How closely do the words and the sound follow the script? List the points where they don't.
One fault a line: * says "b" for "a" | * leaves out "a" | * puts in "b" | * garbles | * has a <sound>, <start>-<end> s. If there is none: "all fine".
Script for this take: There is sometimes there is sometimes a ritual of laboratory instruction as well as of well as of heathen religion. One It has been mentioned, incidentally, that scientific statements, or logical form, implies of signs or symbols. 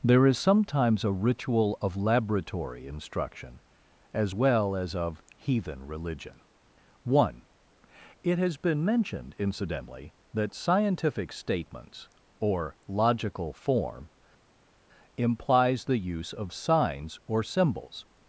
* leaves out "there is sometimes"
* leaves out "well as of"
* puts in "the use"